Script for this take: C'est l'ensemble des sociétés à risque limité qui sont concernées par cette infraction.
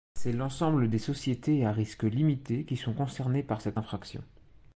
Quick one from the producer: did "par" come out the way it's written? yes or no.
yes